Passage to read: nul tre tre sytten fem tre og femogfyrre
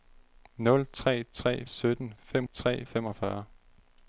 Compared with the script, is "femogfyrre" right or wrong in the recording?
right